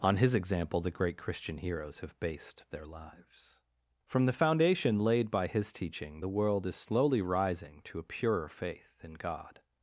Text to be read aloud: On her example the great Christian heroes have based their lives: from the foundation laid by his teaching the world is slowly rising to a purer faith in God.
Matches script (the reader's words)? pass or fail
fail